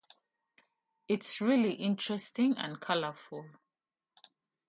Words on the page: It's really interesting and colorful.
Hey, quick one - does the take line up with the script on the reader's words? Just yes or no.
yes